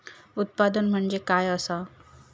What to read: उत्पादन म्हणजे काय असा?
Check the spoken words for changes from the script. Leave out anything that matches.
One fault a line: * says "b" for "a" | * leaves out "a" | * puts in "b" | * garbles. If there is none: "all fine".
all fine